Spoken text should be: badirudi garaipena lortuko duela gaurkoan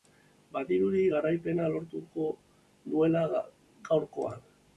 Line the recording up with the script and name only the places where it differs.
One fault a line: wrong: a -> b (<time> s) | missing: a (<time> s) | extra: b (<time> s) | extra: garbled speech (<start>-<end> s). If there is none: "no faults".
no faults